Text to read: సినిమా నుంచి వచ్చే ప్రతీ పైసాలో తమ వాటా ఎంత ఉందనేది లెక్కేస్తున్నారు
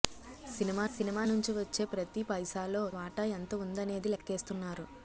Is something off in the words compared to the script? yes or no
yes